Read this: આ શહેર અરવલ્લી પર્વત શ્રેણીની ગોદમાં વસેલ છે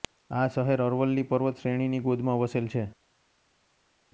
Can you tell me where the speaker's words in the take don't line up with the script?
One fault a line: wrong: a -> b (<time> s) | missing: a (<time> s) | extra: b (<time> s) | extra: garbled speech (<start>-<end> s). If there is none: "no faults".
no faults